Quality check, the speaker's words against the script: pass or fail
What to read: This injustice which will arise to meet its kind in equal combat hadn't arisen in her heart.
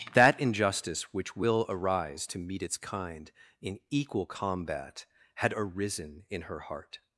fail